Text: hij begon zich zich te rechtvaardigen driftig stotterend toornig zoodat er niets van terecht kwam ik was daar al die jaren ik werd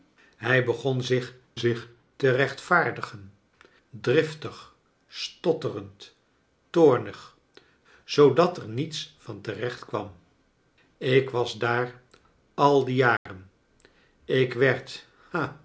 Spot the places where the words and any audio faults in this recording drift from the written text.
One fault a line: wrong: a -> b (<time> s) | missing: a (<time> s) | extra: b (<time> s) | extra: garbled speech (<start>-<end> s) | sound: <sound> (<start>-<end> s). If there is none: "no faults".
sound: dropout (13.2-13.3 s)